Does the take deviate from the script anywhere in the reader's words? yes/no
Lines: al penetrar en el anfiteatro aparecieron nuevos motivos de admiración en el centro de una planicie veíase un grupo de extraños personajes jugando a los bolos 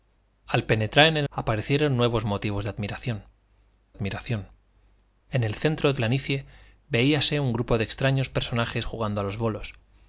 yes